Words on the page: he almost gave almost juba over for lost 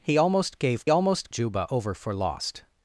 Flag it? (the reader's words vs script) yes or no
no